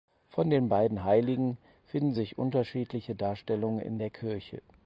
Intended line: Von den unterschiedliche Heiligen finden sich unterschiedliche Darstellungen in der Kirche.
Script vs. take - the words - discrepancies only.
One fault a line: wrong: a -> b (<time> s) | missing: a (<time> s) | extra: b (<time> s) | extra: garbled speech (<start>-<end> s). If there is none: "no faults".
wrong: unterschiedliche -> beiden (0.7 s)